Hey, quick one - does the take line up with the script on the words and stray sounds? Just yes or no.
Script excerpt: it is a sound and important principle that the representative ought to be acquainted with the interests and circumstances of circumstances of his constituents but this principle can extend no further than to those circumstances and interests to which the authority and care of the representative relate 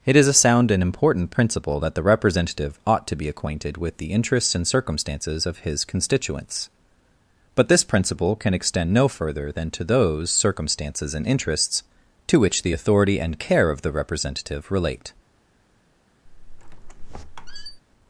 no